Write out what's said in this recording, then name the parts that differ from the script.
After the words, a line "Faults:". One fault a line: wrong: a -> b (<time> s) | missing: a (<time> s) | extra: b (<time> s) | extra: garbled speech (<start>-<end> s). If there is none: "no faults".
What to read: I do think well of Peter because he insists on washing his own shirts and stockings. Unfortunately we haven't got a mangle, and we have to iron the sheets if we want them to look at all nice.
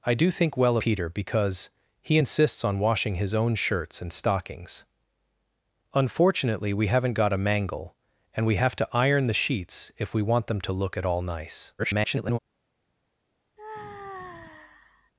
I do think well Peter because he insists on washing his own shirts and stockings. Unfortunately we haven't got a mangle, and we have to iron the sheets if we want them to look at all nice. [garbled]
Faults:
missing: of (0.8 s)
extra: garbled speech (11.8-12.4 s)